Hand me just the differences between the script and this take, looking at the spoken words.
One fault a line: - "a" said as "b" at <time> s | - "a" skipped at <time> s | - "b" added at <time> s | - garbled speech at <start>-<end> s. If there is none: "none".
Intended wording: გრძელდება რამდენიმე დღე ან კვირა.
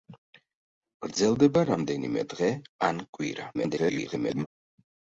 - garbled speech at 3.5-4.5 s